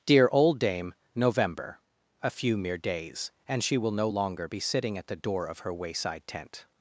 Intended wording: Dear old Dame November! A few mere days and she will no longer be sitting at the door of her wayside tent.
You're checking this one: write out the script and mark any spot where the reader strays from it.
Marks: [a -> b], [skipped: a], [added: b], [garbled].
Dear old Dame November! A few mere days and she will no longer be sitting at the door of her wayside tent.